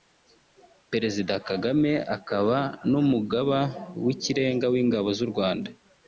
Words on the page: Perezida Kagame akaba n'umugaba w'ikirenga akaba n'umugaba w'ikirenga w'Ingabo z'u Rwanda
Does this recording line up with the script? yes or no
no